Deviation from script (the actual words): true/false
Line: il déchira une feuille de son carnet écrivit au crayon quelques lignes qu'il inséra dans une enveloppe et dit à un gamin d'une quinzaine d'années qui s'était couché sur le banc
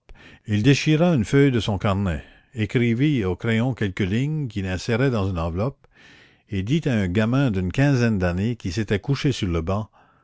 false